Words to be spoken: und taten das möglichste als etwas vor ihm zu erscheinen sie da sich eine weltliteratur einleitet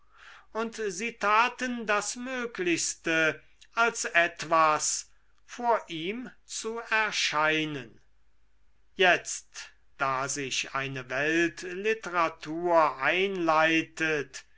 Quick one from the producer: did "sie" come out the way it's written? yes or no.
no